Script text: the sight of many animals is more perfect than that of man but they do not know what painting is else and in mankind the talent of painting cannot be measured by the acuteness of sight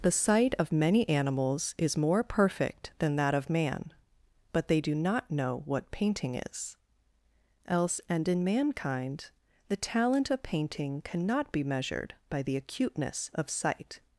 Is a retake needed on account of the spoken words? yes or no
no